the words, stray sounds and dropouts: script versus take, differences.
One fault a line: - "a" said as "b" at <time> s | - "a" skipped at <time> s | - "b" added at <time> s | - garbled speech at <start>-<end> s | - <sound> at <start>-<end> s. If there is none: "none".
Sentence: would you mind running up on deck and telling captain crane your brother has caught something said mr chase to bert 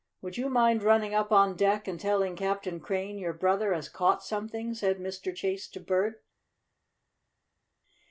none